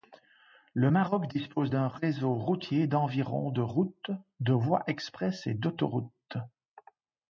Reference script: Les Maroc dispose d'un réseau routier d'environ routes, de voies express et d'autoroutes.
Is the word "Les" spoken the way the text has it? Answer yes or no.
no